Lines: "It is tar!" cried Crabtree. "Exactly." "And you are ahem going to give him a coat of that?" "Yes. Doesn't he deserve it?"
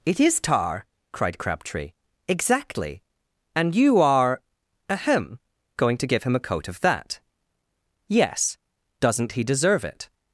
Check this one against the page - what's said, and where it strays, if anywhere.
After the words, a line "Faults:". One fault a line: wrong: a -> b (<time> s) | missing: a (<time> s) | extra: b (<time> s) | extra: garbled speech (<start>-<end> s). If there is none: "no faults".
"It is tar!" cried Crabtree. "Exactly." "And you are ahem going to give him a coat of that?" "Yes. Doesn't he deserve it?"
Faults:
no faults